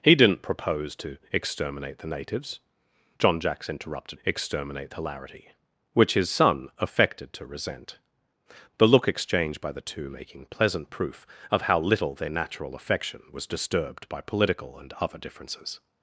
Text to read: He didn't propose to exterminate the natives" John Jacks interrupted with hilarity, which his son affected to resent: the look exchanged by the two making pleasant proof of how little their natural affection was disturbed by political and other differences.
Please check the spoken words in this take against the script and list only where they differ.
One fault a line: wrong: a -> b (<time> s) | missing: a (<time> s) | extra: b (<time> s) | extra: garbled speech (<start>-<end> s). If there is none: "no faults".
wrong: with -> exterminate (4.2 s)